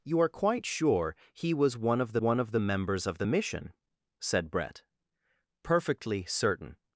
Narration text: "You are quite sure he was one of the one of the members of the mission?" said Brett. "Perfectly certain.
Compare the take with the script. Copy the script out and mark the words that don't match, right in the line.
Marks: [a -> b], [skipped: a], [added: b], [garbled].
"You are quite sure he was one of the one of the members of the mission?" said Brett. "Perfectly certain.